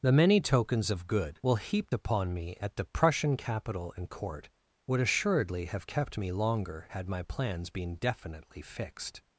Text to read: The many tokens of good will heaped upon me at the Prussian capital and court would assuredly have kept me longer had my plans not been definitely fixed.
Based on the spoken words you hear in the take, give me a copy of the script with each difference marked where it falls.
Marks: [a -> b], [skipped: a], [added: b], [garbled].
The many tokens of good will heaped upon me at the Prussian capital and court would assuredly have kept me longer had my plans [skipped: not] been definitely fixed.